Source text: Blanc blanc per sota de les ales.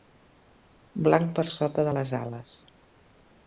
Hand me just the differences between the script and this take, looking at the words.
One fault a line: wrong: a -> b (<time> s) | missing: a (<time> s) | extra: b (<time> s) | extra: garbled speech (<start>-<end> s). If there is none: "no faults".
missing: blanc (1.3 s)